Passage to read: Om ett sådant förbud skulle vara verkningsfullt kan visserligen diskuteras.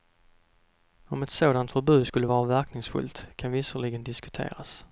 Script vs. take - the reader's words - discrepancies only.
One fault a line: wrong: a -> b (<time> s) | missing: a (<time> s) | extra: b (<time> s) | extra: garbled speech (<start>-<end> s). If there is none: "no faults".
no faults